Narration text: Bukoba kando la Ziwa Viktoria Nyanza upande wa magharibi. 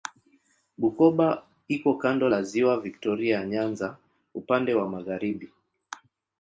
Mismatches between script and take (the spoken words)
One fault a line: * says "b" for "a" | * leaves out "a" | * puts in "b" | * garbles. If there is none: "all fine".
* puts in "iko"